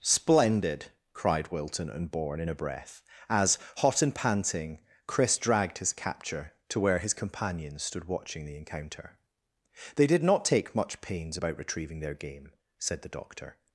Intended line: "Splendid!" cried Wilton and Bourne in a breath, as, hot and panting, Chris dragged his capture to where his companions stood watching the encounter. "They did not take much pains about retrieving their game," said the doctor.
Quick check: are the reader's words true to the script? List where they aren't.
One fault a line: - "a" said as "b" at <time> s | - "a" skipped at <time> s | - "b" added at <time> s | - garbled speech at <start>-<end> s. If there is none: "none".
none